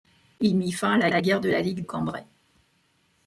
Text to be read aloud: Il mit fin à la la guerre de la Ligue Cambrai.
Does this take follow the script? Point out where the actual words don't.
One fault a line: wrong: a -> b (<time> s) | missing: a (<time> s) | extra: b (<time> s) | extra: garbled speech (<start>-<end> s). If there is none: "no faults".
no faults